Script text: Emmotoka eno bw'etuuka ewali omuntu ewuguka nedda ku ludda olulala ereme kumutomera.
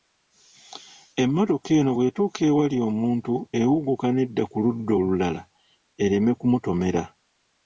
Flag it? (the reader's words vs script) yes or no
no